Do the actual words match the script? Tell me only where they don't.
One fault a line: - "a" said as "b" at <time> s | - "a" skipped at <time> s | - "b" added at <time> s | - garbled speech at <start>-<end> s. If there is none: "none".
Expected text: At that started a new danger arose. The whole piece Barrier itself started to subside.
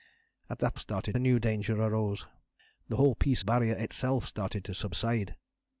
none